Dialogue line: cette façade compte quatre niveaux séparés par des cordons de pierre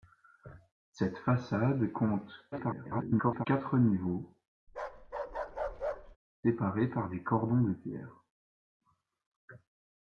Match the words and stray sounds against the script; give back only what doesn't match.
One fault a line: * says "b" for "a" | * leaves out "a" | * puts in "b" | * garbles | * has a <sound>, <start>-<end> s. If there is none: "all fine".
* garbles
* has a bark, 4.7-6.2 s